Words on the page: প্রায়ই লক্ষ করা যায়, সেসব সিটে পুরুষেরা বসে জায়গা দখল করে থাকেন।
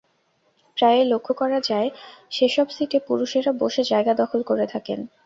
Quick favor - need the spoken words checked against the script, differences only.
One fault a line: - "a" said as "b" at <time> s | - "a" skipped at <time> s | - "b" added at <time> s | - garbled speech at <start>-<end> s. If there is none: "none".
none